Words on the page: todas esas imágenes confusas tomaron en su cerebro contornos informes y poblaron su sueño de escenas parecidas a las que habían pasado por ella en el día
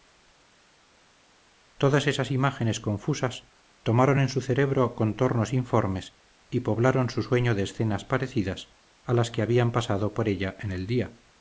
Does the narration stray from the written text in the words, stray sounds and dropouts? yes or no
no